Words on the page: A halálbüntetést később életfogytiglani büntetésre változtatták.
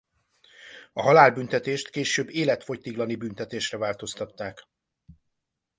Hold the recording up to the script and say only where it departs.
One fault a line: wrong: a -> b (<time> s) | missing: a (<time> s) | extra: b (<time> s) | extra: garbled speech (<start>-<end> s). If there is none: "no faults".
no faults